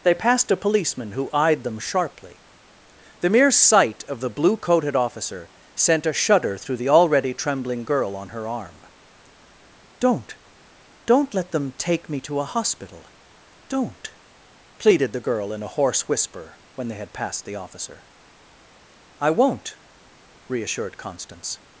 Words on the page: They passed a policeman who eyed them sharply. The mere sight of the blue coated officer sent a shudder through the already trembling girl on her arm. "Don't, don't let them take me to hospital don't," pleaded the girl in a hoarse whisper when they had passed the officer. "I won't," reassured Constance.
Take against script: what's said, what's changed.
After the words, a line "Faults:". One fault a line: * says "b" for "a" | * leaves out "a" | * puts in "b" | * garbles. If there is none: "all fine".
They passed a policeman who eyed them sharply. The mere sight of the blue coated officer sent a shudder through the already trembling girl on her arm. "Don't, don't let them take me to a hospital don't," pleaded the girl in a hoarse whisper when they had passed the officer. "I won't," reassured Constance.
Faults:
* puts in "a"